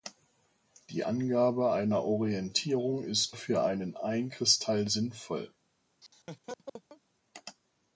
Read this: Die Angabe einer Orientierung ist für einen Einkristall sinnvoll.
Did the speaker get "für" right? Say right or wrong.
right